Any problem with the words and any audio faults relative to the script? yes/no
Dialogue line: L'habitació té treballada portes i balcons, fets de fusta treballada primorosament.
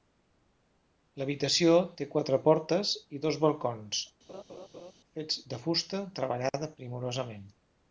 yes